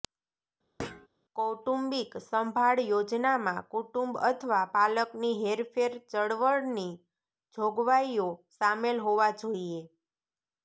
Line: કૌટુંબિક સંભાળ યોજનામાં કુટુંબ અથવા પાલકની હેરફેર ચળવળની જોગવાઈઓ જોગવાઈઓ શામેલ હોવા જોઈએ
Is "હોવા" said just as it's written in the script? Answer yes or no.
yes